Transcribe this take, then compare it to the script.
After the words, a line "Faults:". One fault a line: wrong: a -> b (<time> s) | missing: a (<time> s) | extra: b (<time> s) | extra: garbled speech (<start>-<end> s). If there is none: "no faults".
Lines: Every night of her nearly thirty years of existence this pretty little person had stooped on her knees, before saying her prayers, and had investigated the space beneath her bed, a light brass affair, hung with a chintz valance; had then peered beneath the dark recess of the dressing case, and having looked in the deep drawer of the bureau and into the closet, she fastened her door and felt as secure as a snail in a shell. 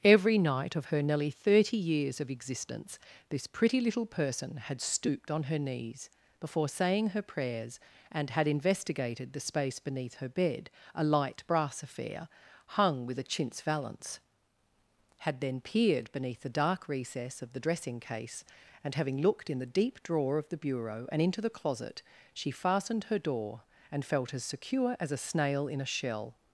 Every night of her nearly thirty years of existence this pretty little person had stooped on her knees, before saying her prayers, and had investigated the space beneath her bed, a light brass affair, hung with a chintz valance; had then peered beneath the dark recess of the dressing case, and having looked in the deep drawer of the bureau and into the closet, she fastened her door and felt as secure as a snail in a shell.
Faults:
no faults